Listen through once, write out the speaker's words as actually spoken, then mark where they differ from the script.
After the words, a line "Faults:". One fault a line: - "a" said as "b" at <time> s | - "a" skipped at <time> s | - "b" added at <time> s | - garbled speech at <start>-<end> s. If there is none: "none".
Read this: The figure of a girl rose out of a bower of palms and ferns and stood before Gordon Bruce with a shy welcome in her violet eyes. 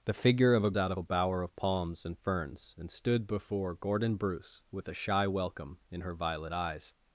The figure of a out of a bower of palms and ferns and stood before Gordon Bruce with a shy welcome in her violet eyes.
Faults:
- "girl rose" skipped at 0.7 s